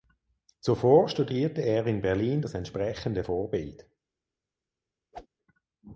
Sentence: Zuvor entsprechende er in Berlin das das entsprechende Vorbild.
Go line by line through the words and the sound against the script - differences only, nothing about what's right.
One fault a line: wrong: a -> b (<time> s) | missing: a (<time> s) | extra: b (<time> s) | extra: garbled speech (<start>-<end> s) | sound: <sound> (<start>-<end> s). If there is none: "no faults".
wrong: entsprechende -> studierte (1.1 s)
missing: das (2.5 s)
sound: whoosh (5.1-5.3 s)